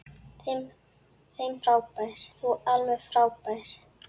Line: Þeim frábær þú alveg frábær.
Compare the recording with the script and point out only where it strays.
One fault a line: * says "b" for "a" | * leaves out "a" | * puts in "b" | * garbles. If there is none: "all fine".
all fine